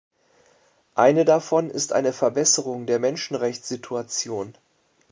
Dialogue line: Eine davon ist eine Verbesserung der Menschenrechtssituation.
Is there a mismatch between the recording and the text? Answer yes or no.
no